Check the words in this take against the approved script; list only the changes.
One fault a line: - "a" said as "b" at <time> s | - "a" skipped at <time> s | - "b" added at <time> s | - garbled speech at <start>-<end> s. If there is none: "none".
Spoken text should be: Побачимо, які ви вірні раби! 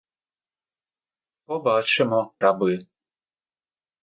- "які ви вірні" skipped at 2.3 s